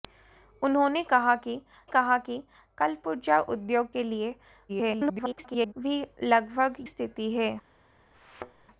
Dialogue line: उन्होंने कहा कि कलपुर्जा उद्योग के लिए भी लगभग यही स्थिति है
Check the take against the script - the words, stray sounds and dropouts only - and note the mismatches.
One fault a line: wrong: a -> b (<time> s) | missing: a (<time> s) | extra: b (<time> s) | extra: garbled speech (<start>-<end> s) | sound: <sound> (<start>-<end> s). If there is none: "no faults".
extra: कहा कि (1.9 s)
extra: garbled speech (4.7-5.7 s)
missing: यही (6.7 s)
sound: thud (8.1-8.7 s)